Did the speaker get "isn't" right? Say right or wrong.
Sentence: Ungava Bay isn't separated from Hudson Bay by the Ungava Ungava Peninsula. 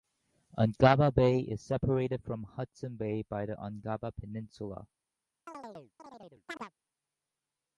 wrong